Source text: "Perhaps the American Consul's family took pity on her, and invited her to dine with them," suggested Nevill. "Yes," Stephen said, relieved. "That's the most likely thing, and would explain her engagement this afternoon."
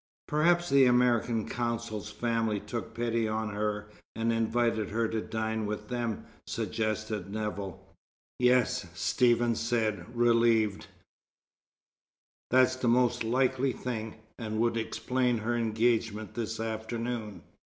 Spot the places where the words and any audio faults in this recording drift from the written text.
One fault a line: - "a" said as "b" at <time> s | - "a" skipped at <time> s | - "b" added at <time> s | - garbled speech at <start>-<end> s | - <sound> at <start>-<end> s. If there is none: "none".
none